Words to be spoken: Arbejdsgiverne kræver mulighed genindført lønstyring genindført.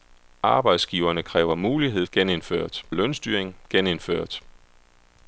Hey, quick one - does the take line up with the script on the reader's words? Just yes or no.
yes